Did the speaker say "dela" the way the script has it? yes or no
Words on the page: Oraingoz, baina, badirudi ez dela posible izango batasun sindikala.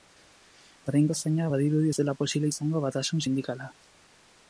yes